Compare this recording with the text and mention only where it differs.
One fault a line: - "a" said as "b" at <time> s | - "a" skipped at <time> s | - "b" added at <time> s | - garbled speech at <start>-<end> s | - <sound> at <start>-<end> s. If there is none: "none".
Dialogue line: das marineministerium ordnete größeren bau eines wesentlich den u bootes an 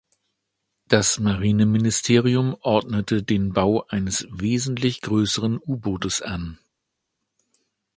- "größeren" said as "den" at 3.2 s
- "den" said as "größeren" at 5.0 s